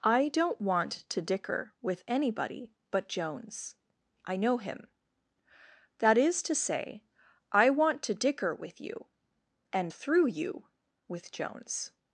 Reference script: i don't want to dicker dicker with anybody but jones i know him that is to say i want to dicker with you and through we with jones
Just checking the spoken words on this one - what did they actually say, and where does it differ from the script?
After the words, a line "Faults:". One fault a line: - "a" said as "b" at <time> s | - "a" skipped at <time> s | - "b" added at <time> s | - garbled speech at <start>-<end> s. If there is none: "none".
i don't want to dicker with anybody but jones i know him that is to say i want to dicker with you and through you with jones
Faults:
- "dicker" skipped at 1.7 s
- "we" said as "you" at 10.3 s